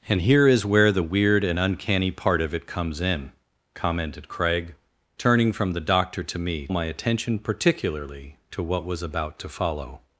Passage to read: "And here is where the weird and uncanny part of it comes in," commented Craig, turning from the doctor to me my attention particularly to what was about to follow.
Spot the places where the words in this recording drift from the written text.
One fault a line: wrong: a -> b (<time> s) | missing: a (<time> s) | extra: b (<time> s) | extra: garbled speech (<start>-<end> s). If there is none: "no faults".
no faults